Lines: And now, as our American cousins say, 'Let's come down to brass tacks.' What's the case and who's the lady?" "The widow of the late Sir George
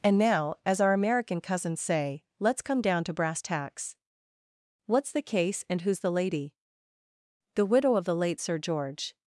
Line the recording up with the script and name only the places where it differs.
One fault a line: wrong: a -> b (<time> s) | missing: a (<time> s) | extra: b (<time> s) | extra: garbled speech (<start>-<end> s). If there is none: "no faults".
no faults